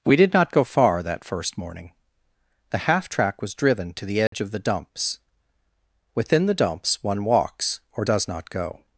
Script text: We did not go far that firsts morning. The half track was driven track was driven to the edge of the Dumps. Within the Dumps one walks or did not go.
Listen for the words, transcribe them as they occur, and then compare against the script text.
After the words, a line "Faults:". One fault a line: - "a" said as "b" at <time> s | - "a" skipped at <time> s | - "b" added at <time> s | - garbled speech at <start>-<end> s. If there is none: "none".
We did not go far that first morning. The half track was driven to the edge of the Dumps. Within the Dumps one walks or does not go.
Faults:
- "firsts" said as "first" at 1.2 s
- "track was driven" skipped at 3.9 s
- "did" said as "does" at 8.0 s